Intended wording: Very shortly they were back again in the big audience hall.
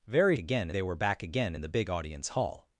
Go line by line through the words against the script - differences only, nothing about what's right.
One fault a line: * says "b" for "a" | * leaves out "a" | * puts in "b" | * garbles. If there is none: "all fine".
* says "again" for "shortly"